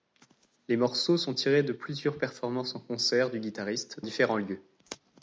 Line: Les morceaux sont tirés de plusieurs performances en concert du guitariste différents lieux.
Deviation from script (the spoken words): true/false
false